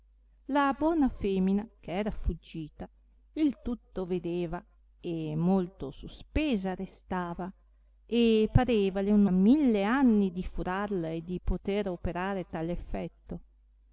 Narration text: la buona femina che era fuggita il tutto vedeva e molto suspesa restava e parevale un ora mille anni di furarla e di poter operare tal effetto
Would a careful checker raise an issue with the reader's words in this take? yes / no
yes